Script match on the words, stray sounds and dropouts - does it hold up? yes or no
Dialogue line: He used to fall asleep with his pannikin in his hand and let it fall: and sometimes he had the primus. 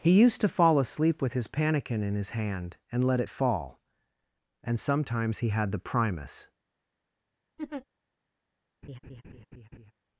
no